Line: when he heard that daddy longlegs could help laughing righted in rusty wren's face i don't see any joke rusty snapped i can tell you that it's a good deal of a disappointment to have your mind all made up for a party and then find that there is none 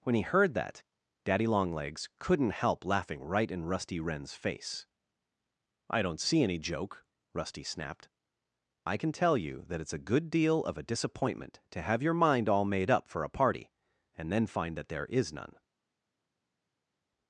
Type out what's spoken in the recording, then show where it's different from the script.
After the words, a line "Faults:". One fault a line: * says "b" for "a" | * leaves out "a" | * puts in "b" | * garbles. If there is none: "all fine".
when he heard that daddy longlegs couldn't help laughing right in rusty wren's face i don't see any joke rusty snapped i can tell you that it's a good deal of a disappointment to have your mind all made up for a party and then find that there is none
Faults:
* says "couldn't" for "could"
* says "right" for "righted"